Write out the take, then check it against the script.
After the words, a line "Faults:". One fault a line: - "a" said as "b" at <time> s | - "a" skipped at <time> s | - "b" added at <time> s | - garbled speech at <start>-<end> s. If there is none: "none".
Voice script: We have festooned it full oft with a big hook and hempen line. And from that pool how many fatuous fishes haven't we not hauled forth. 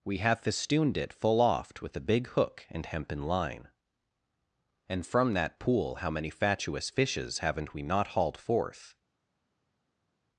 We have festooned it full oft with a big hook and hempen line. And from that pool how many fatuous fishes haven't we not hauled forth.
Faults:
none